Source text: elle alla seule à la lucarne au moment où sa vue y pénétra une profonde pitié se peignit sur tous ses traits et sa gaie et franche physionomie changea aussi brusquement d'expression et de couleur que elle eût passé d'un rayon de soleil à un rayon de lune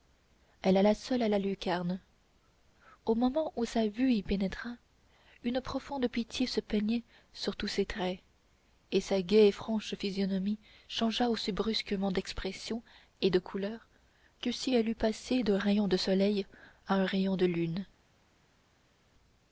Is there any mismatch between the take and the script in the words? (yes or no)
yes